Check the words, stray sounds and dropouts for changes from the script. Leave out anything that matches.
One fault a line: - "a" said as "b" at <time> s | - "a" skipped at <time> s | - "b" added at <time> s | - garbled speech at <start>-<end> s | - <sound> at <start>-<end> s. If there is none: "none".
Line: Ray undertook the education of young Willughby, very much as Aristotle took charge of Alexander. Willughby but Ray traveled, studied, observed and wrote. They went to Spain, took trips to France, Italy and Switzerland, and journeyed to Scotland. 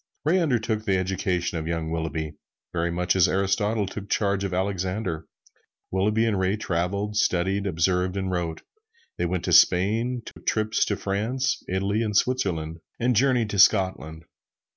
- "but" said as "and" at 6.2 s
- dropout at 10.3-10.4 s